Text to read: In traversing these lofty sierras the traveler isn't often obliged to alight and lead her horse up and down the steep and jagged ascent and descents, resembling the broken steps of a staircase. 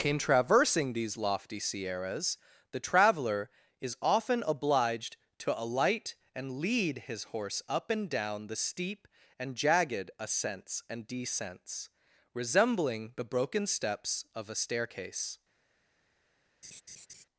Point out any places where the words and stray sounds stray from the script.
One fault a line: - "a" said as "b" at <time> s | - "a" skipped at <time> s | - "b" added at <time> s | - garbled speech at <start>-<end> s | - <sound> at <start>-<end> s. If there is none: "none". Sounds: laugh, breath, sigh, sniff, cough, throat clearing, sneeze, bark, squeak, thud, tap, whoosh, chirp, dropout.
- "isn't" said as "is" at 3.8 s
- "her" said as "his" at 7.0 s
- "ascent" said as "ascents" at 10.2 s
- laugh at 16.6-17.2 s